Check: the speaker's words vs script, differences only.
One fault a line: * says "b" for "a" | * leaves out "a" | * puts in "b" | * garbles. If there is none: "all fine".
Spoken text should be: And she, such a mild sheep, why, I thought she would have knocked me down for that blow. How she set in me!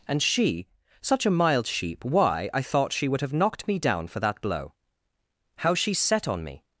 * says "on" for "in"